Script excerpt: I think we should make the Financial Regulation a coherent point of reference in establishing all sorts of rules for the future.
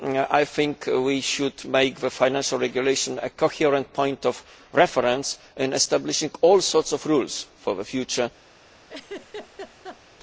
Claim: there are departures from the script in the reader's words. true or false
false